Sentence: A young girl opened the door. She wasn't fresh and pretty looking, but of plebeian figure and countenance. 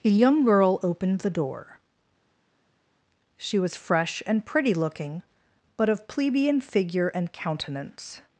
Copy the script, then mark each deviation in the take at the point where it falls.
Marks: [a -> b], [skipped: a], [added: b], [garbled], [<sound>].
A young girl opened the door. She [wasn't -> was] fresh and pretty looking, but of plebeian figure and countenance.